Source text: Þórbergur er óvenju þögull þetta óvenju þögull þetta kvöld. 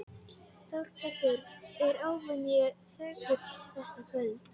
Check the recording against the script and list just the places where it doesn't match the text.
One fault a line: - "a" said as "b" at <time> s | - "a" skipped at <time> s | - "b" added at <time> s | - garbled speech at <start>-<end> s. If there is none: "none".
- "óvenju þögull þetta" skipped at 4.1 s